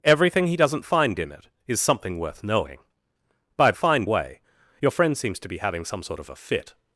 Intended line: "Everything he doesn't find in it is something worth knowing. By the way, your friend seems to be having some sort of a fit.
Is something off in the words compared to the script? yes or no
yes